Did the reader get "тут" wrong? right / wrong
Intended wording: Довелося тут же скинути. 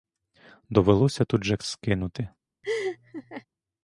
right